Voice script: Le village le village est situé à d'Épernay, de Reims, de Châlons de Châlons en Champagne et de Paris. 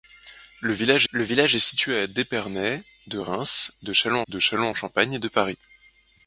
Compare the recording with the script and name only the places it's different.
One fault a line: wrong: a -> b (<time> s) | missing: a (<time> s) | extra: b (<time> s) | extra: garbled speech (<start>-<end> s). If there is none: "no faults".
no faults